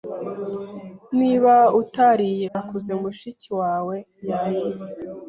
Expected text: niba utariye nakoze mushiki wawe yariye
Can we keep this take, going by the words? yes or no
yes